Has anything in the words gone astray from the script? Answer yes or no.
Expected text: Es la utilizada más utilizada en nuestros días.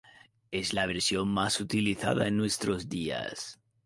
yes